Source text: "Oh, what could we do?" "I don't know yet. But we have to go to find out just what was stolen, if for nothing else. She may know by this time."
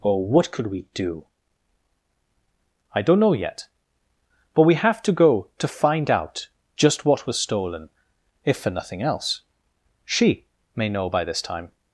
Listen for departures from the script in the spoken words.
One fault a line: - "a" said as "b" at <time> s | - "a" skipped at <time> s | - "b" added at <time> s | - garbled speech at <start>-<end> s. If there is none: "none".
none